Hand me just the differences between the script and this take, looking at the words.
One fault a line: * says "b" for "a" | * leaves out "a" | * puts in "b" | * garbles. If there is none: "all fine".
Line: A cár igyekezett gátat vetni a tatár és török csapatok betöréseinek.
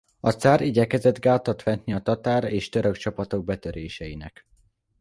all fine